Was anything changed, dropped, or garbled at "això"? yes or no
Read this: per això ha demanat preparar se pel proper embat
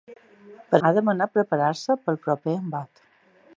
yes